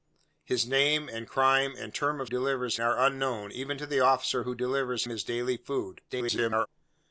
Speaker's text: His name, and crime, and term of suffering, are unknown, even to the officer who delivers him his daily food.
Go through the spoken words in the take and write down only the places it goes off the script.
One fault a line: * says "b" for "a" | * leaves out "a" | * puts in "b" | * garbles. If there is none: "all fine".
* says "delivers" for "suffering"
* leaves out "him"
* garbles